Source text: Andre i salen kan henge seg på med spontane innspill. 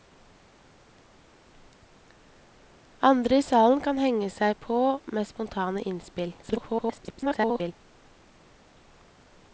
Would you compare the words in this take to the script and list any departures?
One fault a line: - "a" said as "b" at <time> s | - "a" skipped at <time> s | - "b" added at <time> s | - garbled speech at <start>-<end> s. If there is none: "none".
- garbled speech at 6.4-7.7 s